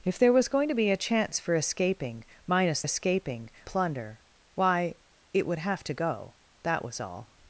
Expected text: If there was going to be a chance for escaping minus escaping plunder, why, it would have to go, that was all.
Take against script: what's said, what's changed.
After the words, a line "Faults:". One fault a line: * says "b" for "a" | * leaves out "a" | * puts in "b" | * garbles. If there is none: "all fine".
If there was going to be a chance for escaping minus escaping plunder, why, it would have to go, that was all.
Faults:
all fine